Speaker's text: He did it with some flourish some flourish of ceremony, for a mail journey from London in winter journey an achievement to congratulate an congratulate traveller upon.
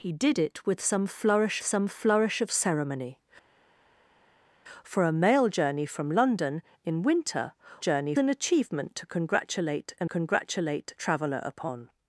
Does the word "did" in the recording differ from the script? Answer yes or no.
no